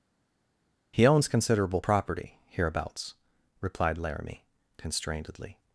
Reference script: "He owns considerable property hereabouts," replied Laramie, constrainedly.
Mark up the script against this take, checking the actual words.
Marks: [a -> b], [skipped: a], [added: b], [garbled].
"He owns considerable property hereabouts," replied Laramie, constrainedly.